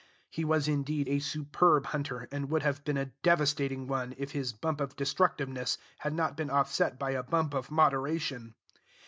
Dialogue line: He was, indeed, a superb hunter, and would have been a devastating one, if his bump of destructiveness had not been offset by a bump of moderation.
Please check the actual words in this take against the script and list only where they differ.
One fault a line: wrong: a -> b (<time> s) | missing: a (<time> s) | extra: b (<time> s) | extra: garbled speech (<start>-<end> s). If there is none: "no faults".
no faults